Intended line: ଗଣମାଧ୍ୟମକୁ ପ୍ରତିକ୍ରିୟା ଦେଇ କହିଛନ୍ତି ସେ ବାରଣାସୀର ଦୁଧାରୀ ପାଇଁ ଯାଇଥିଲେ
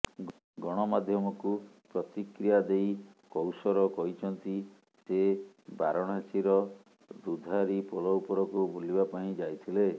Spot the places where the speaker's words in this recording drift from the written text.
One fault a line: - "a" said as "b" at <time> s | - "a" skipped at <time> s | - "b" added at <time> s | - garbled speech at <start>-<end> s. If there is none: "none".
- "କୌସର" added at 3.3 s
- "ପୋଲ ଉପରକୁ ବୁଲିବା" added at 7.9 s